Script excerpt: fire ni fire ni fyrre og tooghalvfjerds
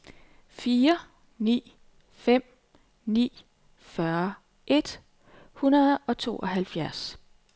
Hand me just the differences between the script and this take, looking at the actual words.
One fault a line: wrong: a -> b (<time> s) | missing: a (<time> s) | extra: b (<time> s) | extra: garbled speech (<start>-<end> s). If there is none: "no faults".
wrong: fire -> fem (2.1 s)
extra: et hundrede (4.7 s)